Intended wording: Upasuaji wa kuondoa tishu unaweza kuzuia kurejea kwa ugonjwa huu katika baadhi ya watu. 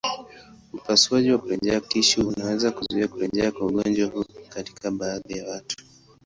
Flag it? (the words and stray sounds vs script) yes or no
yes